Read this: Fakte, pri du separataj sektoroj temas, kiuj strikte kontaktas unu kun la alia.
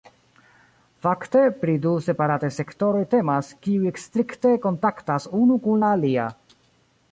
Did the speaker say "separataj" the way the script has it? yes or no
yes